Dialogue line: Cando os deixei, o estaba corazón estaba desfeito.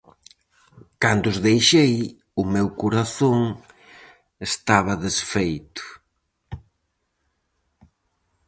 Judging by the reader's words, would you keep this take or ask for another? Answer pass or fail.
fail